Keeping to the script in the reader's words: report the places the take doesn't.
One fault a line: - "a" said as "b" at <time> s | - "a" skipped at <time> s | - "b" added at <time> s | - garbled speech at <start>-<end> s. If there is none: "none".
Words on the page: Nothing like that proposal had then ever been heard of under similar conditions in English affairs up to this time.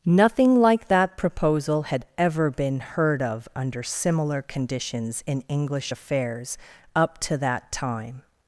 - "then" skipped at 2.0 s
- "this" said as "that" at 7.4 s